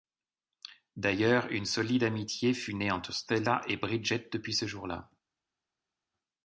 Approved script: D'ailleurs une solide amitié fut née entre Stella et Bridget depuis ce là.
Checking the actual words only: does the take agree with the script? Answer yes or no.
no